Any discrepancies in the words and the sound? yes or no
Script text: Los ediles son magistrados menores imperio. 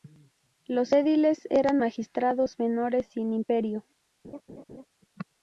yes